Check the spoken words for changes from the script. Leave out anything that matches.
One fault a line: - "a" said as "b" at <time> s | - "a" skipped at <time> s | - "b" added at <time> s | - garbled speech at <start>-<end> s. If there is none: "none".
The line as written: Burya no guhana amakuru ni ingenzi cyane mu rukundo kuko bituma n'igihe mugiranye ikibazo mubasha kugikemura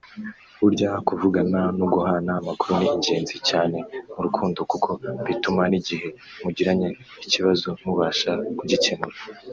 - "kuvugana" added at 1.1 s